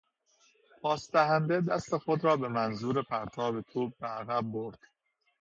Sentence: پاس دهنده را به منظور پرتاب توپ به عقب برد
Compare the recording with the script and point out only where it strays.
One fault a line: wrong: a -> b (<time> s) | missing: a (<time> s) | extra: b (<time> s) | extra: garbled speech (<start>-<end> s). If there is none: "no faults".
extra: دست خود (1.6 s)